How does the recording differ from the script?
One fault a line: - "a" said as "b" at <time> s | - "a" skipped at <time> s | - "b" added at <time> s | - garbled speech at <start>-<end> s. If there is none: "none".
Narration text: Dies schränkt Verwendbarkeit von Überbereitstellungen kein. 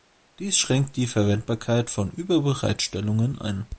- "die" added at 0.9 s
- "kein" said as "ein" at 3.4 s